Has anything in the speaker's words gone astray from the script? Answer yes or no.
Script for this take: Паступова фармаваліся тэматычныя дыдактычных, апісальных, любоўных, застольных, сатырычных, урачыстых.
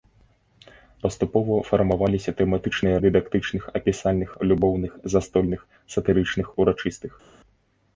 no